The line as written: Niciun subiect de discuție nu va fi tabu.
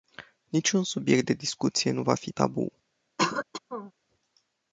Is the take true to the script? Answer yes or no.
yes